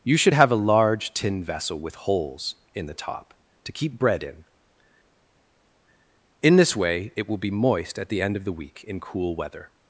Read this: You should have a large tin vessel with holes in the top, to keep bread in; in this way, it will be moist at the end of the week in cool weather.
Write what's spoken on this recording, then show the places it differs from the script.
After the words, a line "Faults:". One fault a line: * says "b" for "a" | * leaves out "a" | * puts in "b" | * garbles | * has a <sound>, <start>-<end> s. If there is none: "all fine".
You should have a large tin vessel with holes in the top, to keep bread in; in this way, it will be moist at the end of the week in cool weather.
Faults:
all fine